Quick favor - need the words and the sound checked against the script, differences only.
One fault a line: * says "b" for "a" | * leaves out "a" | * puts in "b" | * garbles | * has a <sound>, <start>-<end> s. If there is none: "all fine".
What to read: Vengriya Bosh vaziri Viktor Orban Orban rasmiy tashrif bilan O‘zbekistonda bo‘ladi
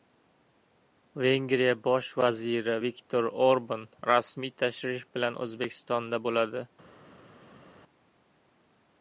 * leaves out "Orban"